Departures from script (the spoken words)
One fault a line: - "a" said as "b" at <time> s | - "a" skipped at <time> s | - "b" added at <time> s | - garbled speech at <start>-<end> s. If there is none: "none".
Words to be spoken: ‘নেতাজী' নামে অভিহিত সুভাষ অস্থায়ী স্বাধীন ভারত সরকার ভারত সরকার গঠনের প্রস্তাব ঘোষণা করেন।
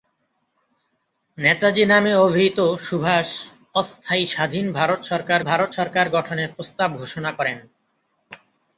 none